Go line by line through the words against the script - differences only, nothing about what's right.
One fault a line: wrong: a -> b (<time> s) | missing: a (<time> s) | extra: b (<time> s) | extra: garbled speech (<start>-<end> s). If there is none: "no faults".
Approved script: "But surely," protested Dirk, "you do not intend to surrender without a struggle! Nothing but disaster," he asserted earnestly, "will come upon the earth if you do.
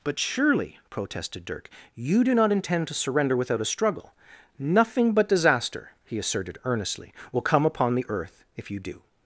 no faults